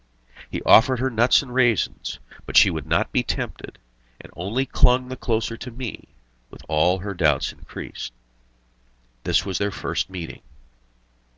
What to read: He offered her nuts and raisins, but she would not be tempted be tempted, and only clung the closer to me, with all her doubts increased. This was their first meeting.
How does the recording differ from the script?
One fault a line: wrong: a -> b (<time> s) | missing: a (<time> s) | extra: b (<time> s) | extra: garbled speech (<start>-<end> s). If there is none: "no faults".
missing: be tempted (3.8 s)